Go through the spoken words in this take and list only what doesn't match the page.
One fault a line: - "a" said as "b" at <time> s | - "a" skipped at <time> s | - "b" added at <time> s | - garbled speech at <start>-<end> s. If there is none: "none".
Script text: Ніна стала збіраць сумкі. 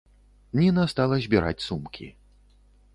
none